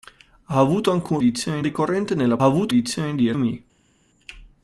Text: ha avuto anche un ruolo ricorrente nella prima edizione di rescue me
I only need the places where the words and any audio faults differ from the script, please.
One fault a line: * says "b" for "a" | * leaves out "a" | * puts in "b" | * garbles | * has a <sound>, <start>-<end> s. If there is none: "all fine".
* says "edizione" for "ruolo"
* says "avuto" for "prima"
* leaves out "rescue"